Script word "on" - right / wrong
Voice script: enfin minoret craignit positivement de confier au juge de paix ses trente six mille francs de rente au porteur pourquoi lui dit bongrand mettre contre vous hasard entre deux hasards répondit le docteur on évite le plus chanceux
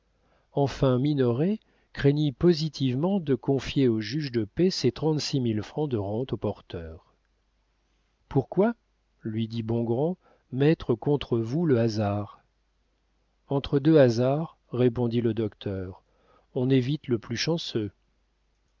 right